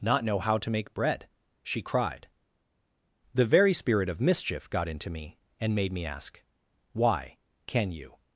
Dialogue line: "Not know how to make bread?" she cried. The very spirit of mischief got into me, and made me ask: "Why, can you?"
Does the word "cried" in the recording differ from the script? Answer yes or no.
no